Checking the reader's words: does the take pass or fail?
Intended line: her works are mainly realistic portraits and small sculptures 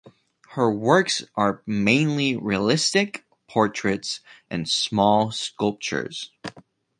pass